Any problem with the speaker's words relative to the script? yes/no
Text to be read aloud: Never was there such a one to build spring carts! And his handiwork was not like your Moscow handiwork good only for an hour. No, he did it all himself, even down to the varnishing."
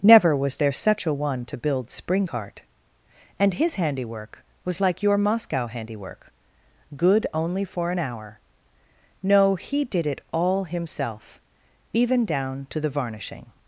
yes